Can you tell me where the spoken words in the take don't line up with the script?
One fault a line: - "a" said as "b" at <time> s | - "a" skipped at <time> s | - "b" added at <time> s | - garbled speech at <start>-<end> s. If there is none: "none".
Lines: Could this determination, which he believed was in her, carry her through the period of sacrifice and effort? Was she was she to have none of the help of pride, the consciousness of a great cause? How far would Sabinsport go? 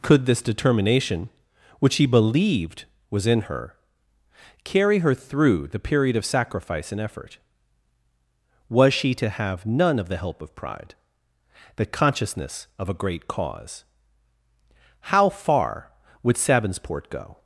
- "was she" skipped at 9.1 s